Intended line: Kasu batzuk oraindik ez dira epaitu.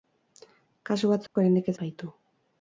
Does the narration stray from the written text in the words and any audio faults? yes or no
yes